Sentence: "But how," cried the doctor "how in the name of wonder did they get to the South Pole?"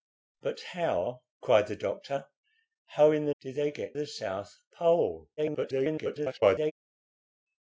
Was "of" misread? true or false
true